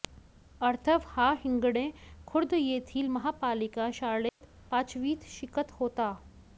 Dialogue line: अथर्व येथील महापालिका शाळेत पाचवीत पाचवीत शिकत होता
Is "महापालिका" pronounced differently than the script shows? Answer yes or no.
no